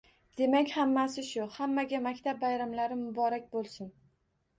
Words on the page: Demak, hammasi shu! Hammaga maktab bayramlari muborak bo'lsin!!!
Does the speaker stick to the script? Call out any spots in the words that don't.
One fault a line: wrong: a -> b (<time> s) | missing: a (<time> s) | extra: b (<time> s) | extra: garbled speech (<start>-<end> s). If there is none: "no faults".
no faults